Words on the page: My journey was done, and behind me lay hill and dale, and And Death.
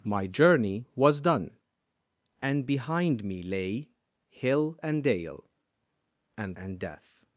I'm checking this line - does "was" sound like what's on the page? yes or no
yes